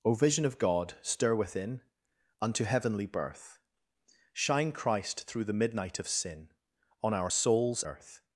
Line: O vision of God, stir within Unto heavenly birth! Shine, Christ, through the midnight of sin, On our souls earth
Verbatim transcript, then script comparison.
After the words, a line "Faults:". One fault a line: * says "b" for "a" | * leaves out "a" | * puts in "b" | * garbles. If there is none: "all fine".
O vision of God, stir within Unto heavenly birth! Shine, Christ, through the midnight of sin, On our souls earth
Faults:
all fine